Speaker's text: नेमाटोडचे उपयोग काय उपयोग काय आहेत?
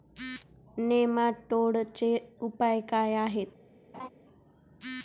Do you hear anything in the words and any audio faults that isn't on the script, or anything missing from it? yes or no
yes